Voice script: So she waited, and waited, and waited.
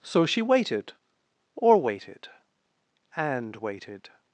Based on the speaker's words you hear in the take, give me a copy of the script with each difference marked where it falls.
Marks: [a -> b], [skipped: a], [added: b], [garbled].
So she waited, [and -> or] waited, and waited.